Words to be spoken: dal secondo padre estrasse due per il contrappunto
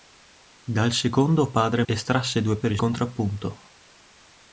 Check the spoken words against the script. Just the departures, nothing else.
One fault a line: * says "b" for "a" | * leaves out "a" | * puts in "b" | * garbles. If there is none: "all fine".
all fine